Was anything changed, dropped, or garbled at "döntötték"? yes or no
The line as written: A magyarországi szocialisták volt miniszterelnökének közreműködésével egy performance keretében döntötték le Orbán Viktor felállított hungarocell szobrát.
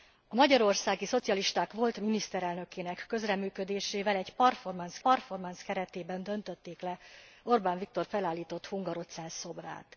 no